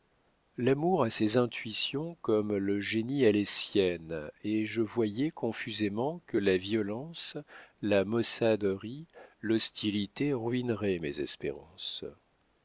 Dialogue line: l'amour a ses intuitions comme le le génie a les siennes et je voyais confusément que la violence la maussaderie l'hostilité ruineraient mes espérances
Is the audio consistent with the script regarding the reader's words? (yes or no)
no